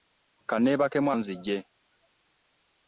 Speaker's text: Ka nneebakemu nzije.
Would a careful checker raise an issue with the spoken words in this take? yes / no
no